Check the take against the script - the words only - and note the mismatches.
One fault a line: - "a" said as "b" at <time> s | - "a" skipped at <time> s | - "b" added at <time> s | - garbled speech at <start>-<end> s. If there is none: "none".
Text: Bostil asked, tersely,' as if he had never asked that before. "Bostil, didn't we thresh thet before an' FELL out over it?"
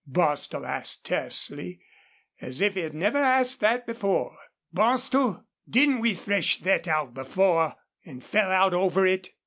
- "out" added at 6.9 s